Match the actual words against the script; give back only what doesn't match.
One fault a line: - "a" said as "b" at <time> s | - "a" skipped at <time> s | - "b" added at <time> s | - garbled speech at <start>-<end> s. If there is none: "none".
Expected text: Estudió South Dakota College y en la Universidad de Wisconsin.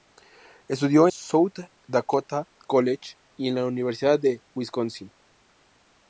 none